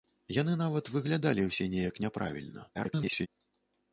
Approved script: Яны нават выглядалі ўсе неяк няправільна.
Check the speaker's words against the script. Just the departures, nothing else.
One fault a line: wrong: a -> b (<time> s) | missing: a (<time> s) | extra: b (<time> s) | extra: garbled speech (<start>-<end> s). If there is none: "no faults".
extra: garbled speech (2.7-3.3 s)